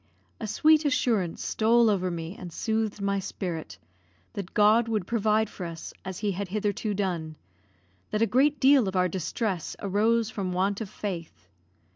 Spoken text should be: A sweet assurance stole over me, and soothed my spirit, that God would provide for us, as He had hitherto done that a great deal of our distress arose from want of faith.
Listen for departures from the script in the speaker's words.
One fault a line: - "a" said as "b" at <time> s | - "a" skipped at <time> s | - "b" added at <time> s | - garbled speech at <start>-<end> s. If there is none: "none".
none